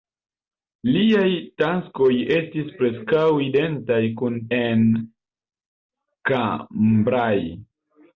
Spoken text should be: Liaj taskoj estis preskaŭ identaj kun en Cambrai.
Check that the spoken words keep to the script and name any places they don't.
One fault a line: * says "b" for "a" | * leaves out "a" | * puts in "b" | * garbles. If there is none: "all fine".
all fine